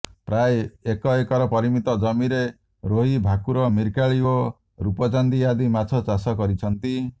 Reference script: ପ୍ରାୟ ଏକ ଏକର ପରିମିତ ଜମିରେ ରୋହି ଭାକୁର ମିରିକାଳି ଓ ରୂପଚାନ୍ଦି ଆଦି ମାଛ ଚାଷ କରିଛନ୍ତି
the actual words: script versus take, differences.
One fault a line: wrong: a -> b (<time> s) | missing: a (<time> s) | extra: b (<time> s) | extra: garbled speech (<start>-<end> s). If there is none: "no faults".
no faults